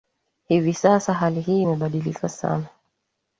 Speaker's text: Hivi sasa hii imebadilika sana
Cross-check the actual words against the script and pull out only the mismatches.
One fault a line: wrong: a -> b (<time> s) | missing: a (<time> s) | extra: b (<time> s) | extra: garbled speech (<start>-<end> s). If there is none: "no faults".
extra: hali (1.1 s)